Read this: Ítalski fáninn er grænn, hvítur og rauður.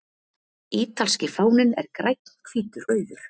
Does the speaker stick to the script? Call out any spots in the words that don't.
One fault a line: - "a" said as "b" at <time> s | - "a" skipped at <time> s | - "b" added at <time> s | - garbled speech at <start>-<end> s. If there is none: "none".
- "og" skipped at 2.9 s